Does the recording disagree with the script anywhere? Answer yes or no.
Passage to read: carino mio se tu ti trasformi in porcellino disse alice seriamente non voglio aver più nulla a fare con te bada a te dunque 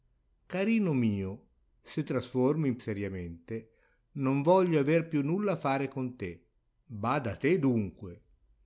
yes